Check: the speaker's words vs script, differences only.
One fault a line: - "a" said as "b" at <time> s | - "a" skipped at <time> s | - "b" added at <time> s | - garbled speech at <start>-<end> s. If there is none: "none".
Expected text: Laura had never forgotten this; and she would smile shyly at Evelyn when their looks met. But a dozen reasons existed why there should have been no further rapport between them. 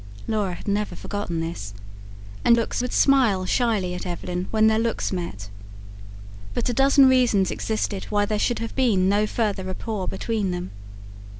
- "she" said as "looks" at 2.5 s